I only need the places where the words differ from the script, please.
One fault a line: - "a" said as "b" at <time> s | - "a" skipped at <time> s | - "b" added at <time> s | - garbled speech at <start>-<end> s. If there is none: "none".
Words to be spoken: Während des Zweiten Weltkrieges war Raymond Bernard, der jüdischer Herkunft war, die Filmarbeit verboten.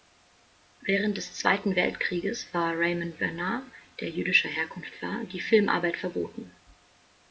none